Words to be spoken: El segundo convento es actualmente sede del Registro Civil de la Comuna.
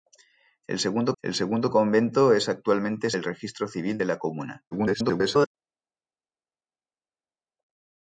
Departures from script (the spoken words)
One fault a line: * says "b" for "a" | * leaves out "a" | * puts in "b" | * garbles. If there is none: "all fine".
* puts in "el segundo"
* leaves out "sede"
* garbles